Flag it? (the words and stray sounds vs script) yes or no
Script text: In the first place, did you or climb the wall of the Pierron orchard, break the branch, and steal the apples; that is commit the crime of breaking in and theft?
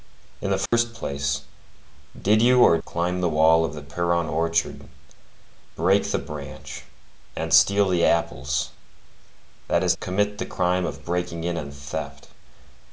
yes